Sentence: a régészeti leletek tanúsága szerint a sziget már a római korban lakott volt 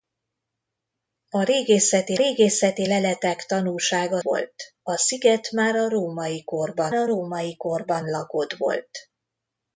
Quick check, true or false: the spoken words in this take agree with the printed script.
false